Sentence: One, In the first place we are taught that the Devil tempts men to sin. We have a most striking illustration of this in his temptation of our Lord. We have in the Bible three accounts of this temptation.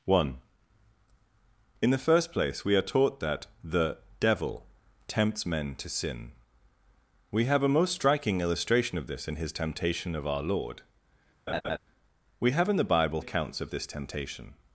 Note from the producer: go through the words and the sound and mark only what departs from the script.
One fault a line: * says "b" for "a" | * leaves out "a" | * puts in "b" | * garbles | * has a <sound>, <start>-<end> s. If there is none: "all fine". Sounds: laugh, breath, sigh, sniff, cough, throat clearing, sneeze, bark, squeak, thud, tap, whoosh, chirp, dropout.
* has a laugh, 11.5-11.8 s
* leaves out "three"